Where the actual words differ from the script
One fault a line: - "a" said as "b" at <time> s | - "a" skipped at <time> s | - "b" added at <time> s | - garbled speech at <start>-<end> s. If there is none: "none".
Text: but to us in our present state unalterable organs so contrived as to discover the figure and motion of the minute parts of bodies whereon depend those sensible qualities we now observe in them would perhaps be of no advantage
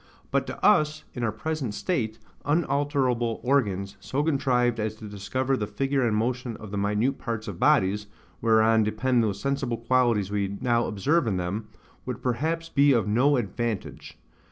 none